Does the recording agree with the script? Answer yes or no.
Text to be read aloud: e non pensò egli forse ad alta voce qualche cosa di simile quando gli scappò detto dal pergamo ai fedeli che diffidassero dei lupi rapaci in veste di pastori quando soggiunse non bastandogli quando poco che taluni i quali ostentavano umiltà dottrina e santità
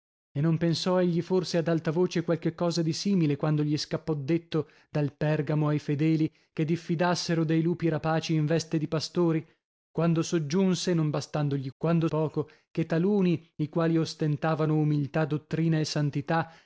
yes